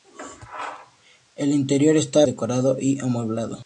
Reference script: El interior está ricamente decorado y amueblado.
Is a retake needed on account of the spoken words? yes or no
yes